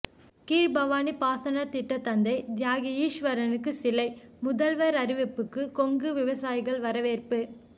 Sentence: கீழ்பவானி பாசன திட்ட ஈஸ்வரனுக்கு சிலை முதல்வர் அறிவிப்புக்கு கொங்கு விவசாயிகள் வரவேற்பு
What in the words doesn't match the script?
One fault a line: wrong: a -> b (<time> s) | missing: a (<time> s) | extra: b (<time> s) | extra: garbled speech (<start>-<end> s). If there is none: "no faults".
extra: தந்தை தியாகி (2.0 s)